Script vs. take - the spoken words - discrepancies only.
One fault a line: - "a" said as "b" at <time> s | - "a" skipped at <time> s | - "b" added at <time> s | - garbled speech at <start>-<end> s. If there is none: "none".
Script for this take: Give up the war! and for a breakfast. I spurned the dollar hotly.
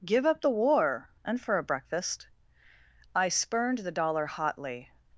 none